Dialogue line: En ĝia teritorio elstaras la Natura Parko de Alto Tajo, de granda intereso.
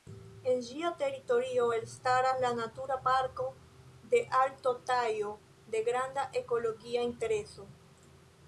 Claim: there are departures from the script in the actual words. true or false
true